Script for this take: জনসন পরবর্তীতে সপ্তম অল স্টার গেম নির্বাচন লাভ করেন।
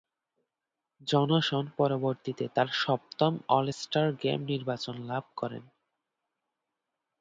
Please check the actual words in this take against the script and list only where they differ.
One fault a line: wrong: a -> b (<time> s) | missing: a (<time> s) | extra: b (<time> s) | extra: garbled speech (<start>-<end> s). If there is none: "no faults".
extra: তার (2.5 s)